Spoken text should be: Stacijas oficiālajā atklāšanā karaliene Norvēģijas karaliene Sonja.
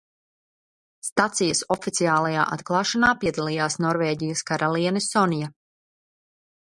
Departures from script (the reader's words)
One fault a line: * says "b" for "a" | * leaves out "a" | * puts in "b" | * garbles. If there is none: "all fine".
* says "piedalījās" for "karaliene"